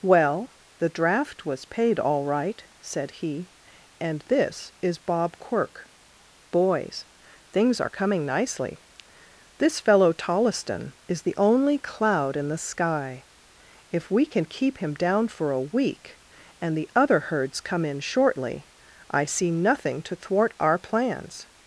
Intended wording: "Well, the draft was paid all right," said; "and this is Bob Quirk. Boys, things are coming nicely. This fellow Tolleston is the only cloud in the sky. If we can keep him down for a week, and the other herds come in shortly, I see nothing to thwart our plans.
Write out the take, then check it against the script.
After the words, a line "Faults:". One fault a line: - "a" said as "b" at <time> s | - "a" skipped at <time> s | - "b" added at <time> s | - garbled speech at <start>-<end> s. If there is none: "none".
"Well, the draft was paid all right," said he; "and this is Bob Quirk. Boys, things are coming nicely. This fellow Tolleston is the only cloud in the sky. If we can keep him down for a week, and the other herds come in shortly, I see nothing to thwart our plans.
Faults:
- "he" added at 3.1 s